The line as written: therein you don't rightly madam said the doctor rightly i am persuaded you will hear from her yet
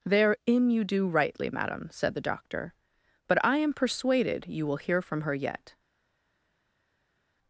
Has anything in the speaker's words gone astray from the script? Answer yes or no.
yes